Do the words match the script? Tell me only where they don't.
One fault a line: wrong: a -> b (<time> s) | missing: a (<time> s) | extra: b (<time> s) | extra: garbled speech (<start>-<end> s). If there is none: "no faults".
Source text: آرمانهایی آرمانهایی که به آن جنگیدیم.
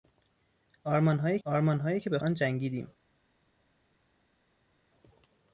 no faults